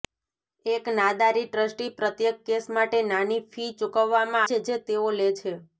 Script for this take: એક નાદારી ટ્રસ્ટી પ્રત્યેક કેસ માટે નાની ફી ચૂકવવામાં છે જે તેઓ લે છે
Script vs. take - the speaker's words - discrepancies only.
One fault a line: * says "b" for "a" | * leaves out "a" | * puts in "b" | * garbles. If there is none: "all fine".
all fine